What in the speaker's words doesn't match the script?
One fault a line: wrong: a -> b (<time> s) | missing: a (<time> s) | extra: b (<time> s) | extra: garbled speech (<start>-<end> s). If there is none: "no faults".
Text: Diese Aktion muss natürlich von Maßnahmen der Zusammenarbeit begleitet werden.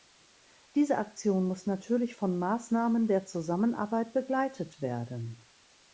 no faults